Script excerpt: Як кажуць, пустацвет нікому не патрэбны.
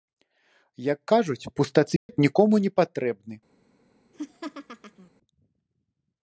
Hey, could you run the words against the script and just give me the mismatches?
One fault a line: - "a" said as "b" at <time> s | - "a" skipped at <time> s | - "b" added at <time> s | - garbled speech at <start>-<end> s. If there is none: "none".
none